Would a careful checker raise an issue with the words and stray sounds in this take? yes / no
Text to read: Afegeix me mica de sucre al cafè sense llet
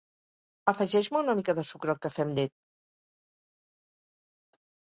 yes